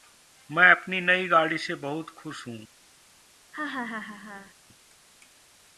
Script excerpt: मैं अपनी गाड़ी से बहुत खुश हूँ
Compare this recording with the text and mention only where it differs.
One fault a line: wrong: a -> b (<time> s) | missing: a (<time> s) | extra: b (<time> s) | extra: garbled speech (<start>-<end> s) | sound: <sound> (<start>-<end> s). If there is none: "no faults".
extra: नई (1.0 s)
sound: laugh (3.5-4.5 s)